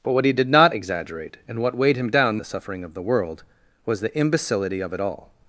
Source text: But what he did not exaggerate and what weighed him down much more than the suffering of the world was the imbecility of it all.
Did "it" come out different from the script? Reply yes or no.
no